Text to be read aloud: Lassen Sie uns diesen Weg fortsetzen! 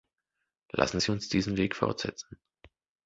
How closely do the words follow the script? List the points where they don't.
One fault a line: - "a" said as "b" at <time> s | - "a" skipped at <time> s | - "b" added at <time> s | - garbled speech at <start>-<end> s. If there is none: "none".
none